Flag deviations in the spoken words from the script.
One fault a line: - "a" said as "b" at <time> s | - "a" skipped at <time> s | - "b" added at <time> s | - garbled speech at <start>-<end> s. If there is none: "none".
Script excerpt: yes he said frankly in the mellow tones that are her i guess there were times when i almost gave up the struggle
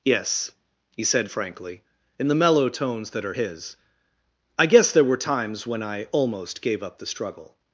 - "her" said as "his" at 3.3 s